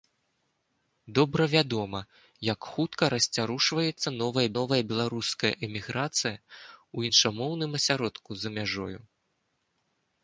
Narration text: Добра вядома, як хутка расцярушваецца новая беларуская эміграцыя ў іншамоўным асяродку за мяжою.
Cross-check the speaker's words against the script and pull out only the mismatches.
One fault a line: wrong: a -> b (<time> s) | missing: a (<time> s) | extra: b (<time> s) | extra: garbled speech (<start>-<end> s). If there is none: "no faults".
extra: новая (4.6 s)